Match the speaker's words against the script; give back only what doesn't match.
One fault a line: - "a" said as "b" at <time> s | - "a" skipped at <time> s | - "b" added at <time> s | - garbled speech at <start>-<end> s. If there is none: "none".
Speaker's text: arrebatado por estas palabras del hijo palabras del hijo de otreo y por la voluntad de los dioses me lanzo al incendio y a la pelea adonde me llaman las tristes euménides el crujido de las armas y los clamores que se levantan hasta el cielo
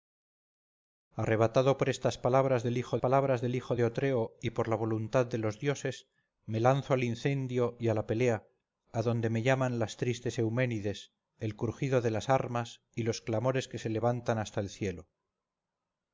none